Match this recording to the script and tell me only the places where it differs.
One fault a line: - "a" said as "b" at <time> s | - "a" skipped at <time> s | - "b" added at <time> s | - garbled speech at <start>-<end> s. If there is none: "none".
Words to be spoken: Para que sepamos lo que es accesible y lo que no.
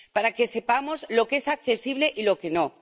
none